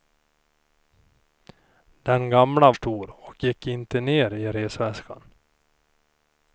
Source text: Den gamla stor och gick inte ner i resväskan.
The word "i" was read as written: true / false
true